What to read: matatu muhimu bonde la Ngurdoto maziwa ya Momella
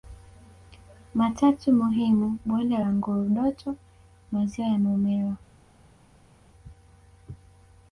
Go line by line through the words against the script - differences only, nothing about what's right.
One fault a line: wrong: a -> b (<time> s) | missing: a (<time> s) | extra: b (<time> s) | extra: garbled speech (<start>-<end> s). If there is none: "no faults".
no faults